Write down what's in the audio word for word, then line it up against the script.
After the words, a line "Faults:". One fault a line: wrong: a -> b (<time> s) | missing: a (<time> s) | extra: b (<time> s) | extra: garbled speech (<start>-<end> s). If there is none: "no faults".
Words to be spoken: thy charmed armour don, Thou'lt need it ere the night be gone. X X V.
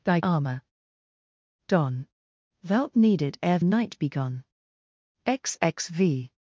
thy armour don, Thou'lt need it ere night be gone. X X V.
Faults:
missing: charmed (0.2 s)
missing: the (3.6 s)